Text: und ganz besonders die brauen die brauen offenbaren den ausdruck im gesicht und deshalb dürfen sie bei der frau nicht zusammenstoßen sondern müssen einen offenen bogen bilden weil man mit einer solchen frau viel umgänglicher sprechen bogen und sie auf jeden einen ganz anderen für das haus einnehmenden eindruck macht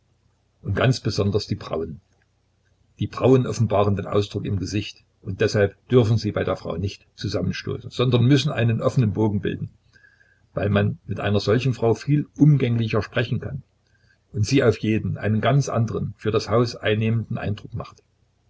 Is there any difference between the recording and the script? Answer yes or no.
yes